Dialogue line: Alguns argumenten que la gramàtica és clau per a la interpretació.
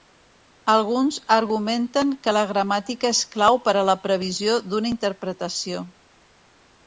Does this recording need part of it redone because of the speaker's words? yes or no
yes